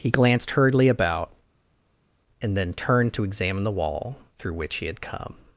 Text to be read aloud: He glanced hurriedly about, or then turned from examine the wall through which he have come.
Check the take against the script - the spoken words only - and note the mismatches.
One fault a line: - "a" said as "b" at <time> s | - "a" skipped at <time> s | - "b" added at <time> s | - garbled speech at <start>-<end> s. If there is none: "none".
- "or" said as "and" at 2.4 s
- "from" said as "to" at 3.1 s
- "have" said as "had" at 4.9 s